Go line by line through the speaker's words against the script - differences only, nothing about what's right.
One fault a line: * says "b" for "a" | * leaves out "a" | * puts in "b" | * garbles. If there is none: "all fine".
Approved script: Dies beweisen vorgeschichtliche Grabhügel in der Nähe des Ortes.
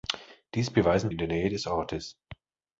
* leaves out "vorgeschichtliche Grabhügel"